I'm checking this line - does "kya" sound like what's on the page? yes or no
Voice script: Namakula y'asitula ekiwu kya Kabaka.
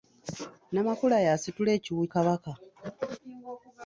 no